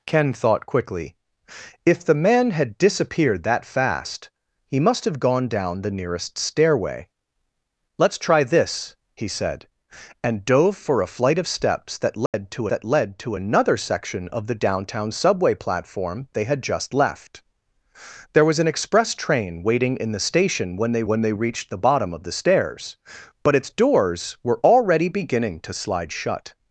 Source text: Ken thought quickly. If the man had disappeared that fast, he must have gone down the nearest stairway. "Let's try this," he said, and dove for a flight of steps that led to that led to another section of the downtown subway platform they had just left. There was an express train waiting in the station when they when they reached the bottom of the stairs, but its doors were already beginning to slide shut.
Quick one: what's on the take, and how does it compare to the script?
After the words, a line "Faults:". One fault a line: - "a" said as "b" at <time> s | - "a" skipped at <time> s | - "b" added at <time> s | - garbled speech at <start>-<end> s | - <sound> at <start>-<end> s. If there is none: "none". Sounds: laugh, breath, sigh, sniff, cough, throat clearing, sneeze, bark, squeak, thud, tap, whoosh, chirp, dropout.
Ken thought quickly. If the man had disappeared that fast, he must have gone down the nearest stairway. "Let's try this," he said, and dove for a flight of steps that led to that led to another section of the downtown subway platform they had just left. There was an express train waiting in the station when they when they reached the bottom of the stairs, but its doors were already beginning to slide shut.
Faults:
- dropout at 12.3-12.3 s